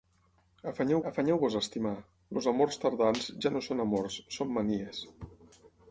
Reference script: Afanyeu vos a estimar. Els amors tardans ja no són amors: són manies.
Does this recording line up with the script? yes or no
no